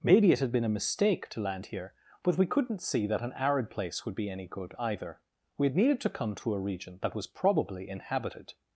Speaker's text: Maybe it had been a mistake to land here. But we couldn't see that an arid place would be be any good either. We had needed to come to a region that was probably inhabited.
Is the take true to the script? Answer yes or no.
no